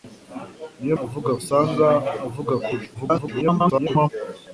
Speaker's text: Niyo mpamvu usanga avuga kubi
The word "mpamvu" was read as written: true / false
false